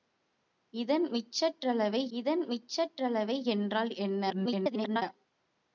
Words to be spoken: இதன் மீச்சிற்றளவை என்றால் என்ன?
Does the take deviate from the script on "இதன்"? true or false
false